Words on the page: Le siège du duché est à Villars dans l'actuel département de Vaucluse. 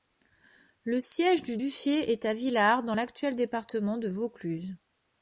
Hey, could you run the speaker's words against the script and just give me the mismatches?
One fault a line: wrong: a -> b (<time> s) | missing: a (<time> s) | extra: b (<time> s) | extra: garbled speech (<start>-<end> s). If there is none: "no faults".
no faults